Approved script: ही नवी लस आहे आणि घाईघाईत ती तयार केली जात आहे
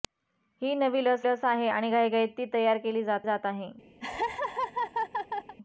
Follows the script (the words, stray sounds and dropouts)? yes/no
no